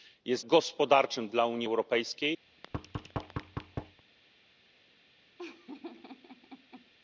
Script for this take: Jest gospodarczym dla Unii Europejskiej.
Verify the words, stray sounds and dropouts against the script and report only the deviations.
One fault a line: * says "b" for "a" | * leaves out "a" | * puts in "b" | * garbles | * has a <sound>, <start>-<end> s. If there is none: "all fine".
* has a thud, 2.5-4.0 s
* has a laugh, 5.4-6.9 s